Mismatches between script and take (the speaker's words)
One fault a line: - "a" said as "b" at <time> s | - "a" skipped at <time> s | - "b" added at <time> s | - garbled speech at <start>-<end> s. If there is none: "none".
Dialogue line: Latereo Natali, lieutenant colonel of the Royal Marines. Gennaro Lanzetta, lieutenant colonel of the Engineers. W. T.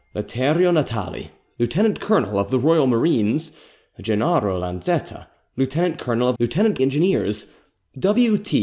- "the" said as "lieutenant" at 6.4 s